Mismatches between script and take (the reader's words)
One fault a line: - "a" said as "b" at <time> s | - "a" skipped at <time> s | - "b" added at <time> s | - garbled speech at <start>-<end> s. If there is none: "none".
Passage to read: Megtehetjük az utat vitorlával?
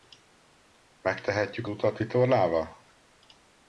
- "az" skipped at 1.7 s